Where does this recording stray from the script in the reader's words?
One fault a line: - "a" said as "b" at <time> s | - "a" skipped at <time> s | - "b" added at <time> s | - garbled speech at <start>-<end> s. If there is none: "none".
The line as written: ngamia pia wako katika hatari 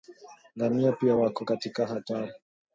none